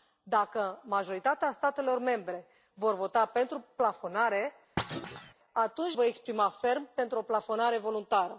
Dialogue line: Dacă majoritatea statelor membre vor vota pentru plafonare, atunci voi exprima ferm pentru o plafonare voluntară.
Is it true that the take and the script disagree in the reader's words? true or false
false